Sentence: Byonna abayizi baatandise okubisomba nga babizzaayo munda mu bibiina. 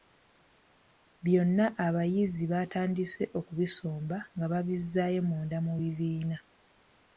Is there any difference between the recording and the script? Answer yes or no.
no